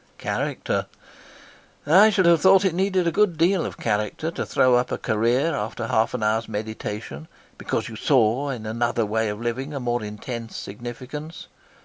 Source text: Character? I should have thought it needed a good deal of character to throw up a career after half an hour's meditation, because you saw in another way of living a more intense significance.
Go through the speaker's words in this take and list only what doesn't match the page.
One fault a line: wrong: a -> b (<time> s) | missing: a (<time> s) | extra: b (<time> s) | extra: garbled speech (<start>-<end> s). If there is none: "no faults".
no faults